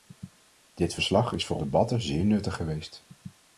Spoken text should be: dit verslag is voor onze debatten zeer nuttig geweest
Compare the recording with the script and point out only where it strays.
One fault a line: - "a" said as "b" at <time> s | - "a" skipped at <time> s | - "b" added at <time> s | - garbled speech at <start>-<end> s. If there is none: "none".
- "onze" skipped at 1.6 s